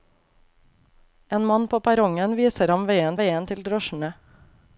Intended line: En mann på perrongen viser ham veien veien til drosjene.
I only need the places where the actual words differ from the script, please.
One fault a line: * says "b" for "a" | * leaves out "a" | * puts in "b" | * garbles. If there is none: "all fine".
all fine